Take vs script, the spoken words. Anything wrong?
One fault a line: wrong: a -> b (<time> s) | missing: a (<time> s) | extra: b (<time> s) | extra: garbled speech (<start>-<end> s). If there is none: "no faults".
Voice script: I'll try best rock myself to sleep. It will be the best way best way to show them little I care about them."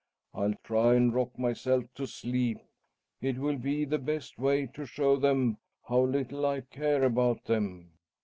wrong: best -> and (0.9 s)
missing: best way (4.6 s)
extra: how (5.9 s)